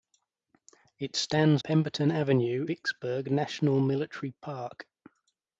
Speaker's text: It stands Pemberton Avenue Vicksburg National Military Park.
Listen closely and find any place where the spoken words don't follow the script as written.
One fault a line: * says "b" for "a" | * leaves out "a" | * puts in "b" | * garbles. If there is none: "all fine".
all fine